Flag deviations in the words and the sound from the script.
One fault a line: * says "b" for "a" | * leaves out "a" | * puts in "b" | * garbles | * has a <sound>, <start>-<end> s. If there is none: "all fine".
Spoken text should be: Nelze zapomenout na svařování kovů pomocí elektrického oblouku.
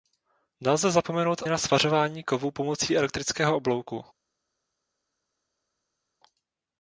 all fine